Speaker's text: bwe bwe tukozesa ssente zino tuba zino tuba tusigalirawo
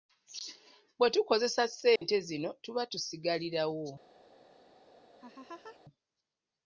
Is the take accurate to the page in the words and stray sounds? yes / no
no